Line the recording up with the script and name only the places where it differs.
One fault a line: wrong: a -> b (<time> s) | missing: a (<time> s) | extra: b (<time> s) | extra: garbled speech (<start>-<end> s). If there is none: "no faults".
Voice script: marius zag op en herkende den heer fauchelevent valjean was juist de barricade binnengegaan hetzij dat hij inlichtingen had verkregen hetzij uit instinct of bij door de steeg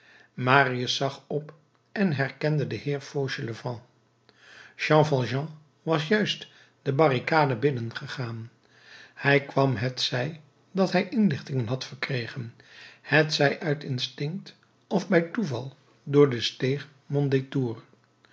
extra: jean (4.7 s)
extra: hij kwam (9.1 s)
extra: toeval (15.2 s)